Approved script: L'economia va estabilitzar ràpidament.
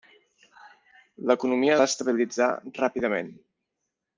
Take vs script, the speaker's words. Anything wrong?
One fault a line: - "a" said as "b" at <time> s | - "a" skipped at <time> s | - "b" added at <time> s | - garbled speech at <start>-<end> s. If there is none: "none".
none